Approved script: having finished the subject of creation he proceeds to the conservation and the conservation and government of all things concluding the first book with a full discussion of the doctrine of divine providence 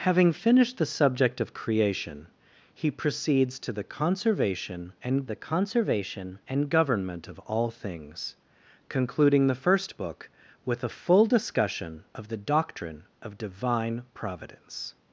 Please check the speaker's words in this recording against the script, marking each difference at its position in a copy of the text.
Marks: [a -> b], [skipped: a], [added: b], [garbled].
having finished the subject of creation he proceeds to the conservation and the conservation and government of all things concluding the first book with a full discussion of the doctrine of divine providence